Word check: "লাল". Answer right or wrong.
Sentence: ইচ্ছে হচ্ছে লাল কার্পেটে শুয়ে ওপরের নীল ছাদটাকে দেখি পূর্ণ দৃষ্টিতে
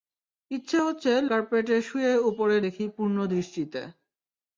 wrong